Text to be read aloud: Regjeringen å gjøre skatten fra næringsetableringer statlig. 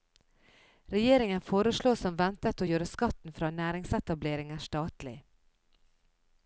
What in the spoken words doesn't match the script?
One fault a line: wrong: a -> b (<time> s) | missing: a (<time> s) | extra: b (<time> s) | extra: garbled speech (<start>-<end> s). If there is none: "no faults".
extra: foreslår som ventet (1.5 s)